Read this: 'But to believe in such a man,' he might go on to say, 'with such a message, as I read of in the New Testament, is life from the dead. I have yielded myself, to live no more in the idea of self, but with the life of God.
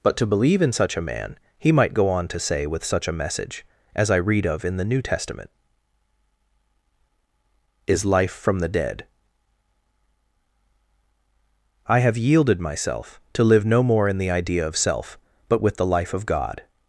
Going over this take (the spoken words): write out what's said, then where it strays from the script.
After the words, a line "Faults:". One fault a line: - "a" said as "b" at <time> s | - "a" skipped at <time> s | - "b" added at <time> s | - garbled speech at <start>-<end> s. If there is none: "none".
'But to believe in such a man,' he might go on to say, 'with such a message, as I read of in the New Testament, is life from the dead. I have yielded myself, to live no more in the idea of self, but with the life of God.
Faults:
none